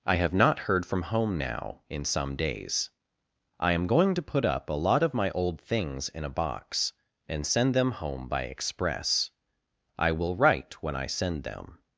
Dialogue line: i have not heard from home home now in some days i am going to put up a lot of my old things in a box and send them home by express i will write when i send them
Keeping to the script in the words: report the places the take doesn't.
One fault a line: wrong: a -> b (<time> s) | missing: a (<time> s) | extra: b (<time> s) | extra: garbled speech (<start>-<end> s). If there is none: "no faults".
missing: home (1.4 s)